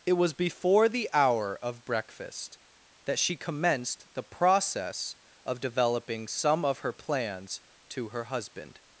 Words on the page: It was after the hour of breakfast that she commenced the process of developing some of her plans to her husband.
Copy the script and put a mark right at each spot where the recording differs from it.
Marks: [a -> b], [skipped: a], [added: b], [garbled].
It was [after -> before] the hour of breakfast that she commenced the process of developing some of her plans to her husband.